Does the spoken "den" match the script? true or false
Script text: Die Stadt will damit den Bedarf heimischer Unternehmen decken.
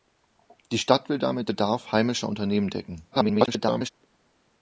false